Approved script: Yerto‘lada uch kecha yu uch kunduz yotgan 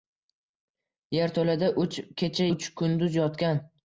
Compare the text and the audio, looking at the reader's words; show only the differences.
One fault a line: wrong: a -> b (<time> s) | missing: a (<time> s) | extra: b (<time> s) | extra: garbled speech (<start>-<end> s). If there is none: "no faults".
missing: yu (2.5 s)